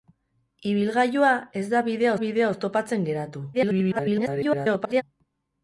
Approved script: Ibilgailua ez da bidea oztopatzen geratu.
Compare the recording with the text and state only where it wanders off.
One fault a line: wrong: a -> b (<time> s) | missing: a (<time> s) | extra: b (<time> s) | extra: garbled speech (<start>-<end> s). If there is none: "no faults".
extra: bidea (2.2 s)
extra: garbled speech (3.5-5.0 s)